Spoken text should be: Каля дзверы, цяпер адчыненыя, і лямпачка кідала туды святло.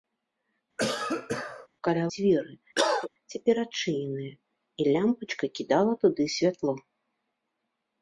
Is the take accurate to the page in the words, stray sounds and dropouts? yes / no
no